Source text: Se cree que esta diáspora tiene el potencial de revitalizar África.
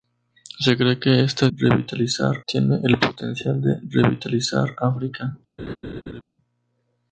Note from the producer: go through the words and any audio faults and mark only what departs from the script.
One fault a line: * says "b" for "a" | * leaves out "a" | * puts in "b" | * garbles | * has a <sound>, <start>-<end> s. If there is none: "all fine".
* says "revitalizar" for "diáspora"
* has a laugh, 5.6-6.2 s